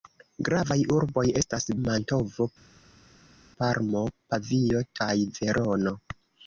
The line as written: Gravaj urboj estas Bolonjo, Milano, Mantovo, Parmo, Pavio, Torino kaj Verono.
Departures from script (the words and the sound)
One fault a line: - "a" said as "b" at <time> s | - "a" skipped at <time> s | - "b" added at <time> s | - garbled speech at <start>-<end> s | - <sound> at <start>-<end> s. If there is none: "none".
- "Bolonjo Milano" skipped at 1.7 s
- "Torino" skipped at 4.8 s